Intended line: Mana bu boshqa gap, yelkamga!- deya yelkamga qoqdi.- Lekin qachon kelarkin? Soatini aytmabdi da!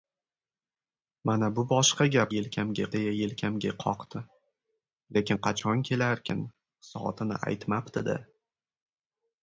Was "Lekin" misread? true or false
false